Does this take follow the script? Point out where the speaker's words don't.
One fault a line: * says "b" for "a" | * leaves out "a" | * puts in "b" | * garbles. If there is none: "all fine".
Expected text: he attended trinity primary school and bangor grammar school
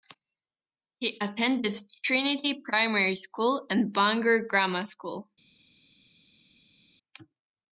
all fine